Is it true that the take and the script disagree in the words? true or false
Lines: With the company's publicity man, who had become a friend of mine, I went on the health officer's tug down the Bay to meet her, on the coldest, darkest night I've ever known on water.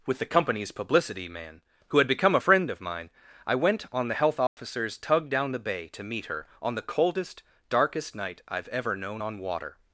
false